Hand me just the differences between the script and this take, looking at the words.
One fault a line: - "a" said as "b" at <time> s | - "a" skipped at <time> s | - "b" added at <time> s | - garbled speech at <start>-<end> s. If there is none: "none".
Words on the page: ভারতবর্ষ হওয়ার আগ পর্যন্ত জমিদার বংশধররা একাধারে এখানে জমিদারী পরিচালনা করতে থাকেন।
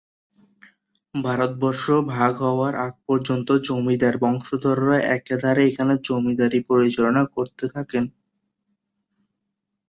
- "ভাগ" added at 2.1 s